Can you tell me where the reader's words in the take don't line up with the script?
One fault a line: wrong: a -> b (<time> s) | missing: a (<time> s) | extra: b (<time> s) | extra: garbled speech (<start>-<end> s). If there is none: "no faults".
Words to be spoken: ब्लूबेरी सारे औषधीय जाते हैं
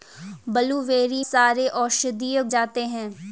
no faults